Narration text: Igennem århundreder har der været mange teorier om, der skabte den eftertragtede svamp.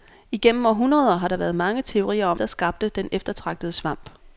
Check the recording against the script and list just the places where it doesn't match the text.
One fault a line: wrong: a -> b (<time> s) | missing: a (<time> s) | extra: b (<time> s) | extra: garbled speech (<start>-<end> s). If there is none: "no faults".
no faults